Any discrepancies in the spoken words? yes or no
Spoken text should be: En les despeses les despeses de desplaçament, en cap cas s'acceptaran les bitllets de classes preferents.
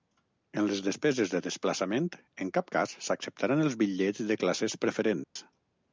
yes